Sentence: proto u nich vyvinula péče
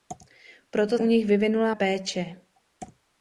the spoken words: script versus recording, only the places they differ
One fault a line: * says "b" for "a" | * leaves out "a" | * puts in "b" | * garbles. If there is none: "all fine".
all fine